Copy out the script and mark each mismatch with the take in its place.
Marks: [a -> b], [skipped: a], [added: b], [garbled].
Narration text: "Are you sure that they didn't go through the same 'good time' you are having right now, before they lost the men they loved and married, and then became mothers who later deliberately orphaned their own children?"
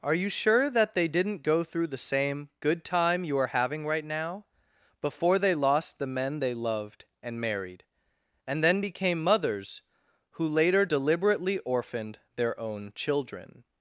"Are you sure that they didn't go through the same 'good time' you are having right now, before they lost the men they loved and married, and then became mothers who later deliberately orphaned their own children?"